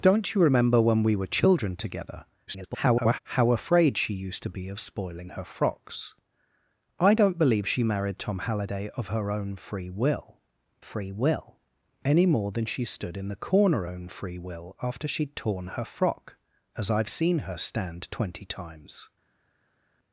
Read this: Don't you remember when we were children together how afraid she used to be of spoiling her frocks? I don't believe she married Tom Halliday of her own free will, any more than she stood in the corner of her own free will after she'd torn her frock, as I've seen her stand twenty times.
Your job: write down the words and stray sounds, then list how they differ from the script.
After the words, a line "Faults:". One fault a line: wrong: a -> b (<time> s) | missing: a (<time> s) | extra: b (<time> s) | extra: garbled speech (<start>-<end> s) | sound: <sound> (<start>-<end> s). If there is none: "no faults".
Don't you remember when we were children together [garbled] how afraid she used to be of spoiling her frocks? I don't believe she married Tom Halliday of her own free will free will, any more than she stood in the corner own free will after she'd torn her frock, as I've seen her stand twenty times.
Faults:
extra: garbled speech (2.5-3.2 s)
extra: free will (10.8 s)
missing: of her (13.8 s)